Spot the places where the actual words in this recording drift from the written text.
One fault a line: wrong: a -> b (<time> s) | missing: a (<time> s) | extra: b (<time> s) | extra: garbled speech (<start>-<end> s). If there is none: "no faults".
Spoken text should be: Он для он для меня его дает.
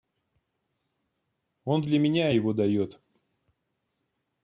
missing: он для (2.0 s)